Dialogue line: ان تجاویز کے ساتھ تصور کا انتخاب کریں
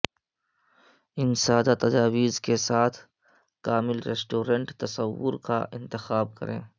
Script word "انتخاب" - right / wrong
right